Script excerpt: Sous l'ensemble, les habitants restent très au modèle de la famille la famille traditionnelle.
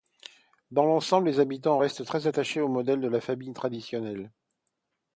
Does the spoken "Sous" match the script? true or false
false